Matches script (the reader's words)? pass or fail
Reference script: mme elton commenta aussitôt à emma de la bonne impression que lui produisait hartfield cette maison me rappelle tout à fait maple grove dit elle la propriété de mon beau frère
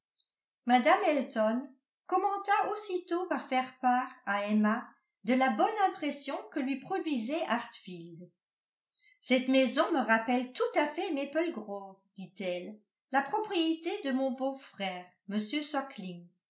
fail